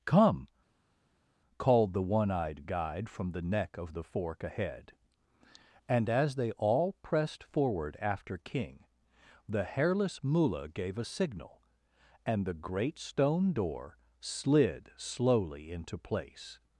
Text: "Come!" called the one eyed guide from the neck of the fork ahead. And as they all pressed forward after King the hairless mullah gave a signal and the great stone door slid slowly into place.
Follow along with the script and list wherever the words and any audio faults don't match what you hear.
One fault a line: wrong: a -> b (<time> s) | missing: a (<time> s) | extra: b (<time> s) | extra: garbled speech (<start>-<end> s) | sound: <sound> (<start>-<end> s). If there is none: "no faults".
no faults